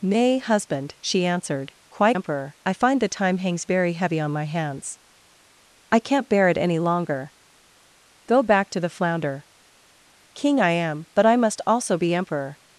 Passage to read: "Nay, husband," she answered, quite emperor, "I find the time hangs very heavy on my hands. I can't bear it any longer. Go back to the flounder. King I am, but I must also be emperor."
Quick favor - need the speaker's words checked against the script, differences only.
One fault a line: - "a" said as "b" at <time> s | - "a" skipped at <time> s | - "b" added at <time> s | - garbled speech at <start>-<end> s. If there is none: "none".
none